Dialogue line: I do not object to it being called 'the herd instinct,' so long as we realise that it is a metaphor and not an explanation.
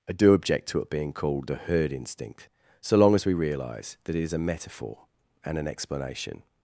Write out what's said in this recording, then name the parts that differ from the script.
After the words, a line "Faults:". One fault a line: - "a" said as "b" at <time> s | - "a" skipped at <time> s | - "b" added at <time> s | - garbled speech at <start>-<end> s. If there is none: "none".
I do object to it being called 'the herd instinct,' so long as we realise that it is a metaphor and an explanation.
Faults:
- "not" skipped at 0.3 s
- "not" skipped at 5.6 s